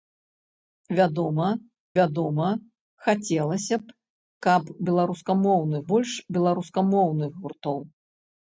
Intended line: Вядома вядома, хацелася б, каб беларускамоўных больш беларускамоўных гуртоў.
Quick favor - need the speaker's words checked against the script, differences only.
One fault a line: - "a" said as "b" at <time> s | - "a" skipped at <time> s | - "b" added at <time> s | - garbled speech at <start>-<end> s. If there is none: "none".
none